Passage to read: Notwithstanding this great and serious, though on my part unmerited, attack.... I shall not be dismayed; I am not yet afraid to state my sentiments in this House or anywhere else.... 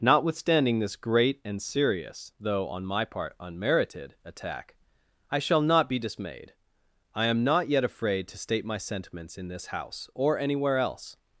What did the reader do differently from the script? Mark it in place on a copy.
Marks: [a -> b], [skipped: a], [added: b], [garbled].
Notwithstanding this great and serious, though on my part unmerited, attack.... I shall not be dismayed; I am not yet afraid to state my sentiments in this House or anywhere else....